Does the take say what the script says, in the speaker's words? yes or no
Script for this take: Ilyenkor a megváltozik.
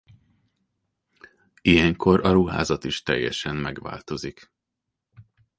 no